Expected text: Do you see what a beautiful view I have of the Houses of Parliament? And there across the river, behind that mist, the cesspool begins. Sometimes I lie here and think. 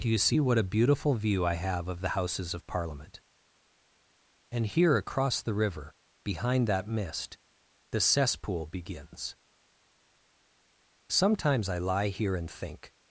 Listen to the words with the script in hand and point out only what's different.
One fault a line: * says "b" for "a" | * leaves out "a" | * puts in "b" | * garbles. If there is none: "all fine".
* says "here" for "there"